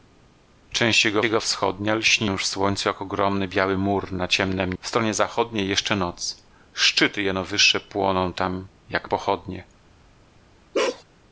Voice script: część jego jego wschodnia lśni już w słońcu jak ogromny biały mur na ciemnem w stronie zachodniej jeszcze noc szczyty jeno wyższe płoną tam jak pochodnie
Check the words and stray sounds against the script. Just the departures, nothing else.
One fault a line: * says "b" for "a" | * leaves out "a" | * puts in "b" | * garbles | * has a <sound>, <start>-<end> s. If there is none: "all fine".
* has a bark, 10.7-11.0 s